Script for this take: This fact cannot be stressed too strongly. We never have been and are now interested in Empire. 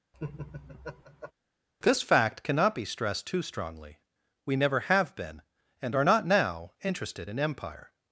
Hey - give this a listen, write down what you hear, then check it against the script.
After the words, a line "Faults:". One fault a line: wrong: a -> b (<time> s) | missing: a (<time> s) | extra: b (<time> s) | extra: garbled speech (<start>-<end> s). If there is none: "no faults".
This fact cannot be stressed too strongly. We never have been and are not now interested in Empire.
Faults:
extra: not (6.0 s)